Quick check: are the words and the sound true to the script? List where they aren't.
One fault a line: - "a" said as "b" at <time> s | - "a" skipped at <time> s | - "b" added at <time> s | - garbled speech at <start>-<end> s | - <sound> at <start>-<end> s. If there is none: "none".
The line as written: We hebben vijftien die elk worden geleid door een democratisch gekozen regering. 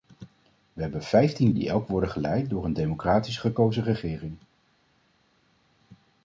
none